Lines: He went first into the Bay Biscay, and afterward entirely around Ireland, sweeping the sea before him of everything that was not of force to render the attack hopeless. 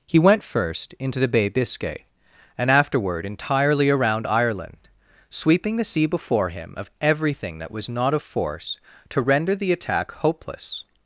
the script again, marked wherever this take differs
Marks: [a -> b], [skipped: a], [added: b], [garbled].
He went first into the Bay Biscay, and afterward entirely around Ireland, sweeping the sea before him of everything that was not of force to render the attack hopeless.